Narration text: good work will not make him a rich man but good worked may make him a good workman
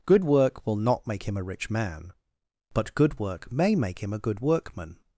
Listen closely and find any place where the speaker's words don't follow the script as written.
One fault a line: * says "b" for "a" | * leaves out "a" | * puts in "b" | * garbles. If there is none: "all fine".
* says "work" for "worked"